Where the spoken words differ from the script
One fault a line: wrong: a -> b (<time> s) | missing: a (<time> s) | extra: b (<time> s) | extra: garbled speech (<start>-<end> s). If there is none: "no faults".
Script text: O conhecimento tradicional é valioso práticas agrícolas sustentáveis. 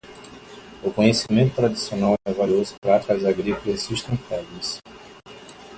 no faults